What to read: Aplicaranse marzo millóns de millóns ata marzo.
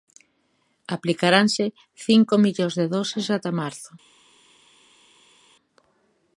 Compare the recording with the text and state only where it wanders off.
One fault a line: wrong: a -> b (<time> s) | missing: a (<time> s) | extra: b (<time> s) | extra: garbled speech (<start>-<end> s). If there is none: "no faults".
wrong: marzo -> cinco (2.0 s)
wrong: millóns -> doses (3.0 s)